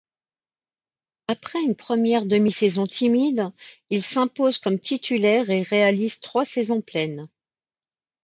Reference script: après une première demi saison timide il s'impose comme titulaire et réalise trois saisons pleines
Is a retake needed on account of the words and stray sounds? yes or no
no